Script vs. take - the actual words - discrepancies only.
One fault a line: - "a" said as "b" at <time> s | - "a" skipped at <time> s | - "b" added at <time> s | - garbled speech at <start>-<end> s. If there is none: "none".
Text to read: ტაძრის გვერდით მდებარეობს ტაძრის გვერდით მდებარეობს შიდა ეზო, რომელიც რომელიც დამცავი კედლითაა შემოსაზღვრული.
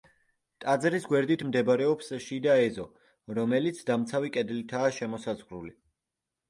- "ტაძრის გვერდით მდებარეობს" skipped at 2.1 s
- "რომელიც" skipped at 3.9 s